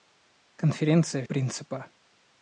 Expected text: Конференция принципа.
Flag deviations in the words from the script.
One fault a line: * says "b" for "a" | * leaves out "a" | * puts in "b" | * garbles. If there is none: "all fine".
all fine